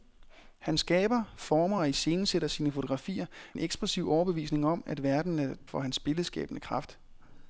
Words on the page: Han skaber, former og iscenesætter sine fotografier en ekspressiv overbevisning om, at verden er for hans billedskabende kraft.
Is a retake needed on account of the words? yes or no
no